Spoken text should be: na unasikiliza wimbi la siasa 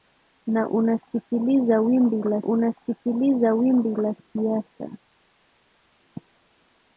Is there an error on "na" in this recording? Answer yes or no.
no